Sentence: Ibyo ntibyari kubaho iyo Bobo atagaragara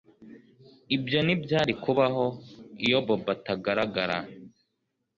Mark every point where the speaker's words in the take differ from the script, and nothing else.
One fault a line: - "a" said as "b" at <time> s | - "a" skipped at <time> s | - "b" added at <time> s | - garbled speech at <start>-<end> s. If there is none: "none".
none